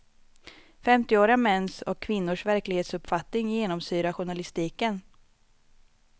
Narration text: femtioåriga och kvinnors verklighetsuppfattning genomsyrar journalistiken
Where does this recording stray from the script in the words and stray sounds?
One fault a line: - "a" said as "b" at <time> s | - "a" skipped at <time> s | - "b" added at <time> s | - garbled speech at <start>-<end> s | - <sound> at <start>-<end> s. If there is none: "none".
- "mäns" added at 1.4 s